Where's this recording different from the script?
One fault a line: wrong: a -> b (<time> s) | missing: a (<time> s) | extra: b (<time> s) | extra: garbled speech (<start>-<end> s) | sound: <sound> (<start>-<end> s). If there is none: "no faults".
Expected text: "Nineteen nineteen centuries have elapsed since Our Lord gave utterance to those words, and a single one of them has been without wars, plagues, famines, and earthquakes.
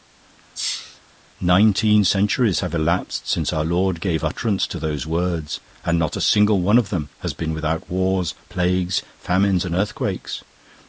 sound: sneeze (0.5-1.0 s)
missing: nineteen (2.0 s)
extra: not (6.0 s)